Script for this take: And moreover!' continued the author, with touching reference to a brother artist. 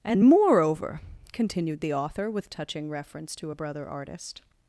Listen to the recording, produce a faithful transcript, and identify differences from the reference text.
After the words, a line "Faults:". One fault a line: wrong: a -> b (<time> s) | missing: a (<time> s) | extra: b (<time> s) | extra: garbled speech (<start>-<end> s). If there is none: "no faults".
And moreover!' continued the author, with touching reference to a brother artist.
Faults:
no faults